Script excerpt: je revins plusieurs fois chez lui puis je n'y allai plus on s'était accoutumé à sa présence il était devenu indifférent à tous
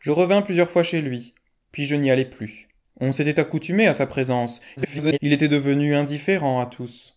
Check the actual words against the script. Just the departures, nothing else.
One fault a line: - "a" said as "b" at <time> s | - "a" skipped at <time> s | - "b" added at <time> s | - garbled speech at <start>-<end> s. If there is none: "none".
- garbled speech at 4.8-5.2 s